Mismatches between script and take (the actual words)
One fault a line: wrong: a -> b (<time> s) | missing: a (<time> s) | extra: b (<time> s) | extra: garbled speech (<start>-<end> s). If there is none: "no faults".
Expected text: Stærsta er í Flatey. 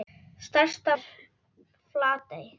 no faults